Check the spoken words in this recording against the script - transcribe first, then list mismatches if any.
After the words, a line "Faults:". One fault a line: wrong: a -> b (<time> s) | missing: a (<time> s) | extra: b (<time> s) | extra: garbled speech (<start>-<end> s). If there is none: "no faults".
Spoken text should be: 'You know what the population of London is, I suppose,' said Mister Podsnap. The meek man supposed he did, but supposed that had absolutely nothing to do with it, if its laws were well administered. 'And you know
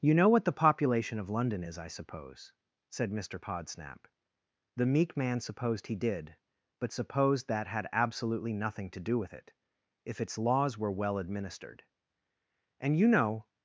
'You know what the population of London is, I suppose,' said Mister Podsnap. The meek man supposed he did, but supposed that had absolutely nothing to do with it, if its laws were well administered. 'And you know
Faults:
no faults